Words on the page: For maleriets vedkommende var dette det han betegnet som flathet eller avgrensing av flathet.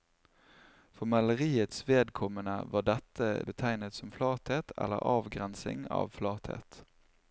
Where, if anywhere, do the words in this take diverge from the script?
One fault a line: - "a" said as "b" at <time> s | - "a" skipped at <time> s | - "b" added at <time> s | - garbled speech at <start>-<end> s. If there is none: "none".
- "det han" skipped at 3.3 s